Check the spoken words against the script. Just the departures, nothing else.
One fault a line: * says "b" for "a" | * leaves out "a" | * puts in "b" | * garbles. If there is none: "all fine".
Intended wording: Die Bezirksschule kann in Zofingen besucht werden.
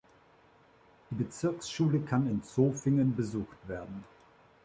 all fine